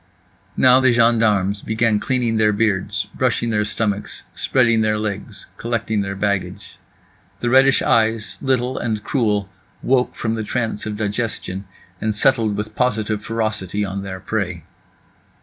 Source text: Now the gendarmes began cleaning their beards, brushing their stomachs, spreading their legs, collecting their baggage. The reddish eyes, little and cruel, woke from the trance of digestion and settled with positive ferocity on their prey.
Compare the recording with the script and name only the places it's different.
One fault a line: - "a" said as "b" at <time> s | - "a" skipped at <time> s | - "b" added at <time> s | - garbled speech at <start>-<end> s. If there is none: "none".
none